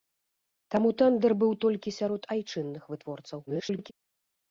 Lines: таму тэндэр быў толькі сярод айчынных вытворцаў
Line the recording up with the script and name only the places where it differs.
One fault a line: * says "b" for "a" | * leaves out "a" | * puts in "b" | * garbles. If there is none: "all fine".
* garbles